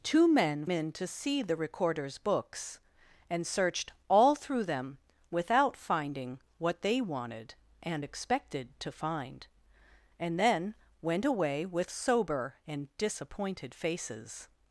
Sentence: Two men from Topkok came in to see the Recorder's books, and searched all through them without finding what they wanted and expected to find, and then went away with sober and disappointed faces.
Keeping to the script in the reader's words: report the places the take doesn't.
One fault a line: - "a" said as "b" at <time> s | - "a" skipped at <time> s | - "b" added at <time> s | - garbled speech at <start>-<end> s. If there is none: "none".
- "from Topkok came" skipped at 0.7 s